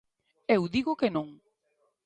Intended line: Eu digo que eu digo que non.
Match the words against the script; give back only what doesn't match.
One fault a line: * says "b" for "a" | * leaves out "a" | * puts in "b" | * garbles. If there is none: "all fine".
* leaves out "eu digo que"